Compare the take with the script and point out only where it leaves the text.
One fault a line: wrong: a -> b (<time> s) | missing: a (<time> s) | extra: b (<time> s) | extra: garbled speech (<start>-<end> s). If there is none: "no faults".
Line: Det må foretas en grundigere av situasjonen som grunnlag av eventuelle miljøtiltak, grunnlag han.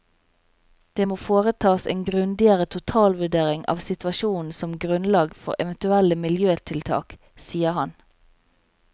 extra: totalvurdering (2.7 s)
wrong: av -> for (5.5 s)
wrong: grunnlag -> sier (7.5 s)